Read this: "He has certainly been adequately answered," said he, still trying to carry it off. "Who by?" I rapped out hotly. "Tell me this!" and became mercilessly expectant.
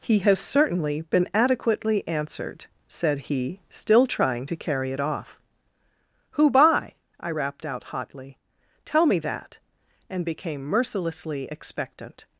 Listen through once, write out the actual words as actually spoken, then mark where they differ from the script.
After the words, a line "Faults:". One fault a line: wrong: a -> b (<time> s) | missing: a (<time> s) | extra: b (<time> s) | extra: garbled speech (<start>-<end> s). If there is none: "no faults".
"He has certainly been adequately answered," said he, still trying to carry it off. "Who by?" I rapped out hotly. "Tell me that!" and became mercilessly expectant.
Faults:
wrong: this -> that (9.2 s)